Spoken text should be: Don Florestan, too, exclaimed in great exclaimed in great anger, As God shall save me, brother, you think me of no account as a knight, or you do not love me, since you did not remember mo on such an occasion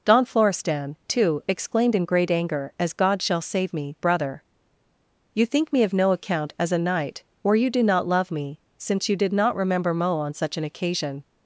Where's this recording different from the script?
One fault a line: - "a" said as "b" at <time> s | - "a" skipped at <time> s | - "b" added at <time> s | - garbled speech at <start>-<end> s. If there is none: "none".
- "exclaimed in great" skipped at 2.3 s